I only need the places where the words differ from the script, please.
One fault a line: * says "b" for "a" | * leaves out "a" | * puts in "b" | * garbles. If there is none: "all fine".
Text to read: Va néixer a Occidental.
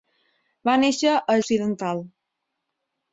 all fine